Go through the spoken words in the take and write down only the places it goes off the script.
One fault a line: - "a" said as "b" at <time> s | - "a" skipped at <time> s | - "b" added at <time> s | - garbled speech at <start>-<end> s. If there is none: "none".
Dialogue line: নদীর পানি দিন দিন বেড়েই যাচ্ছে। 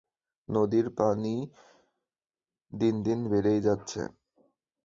none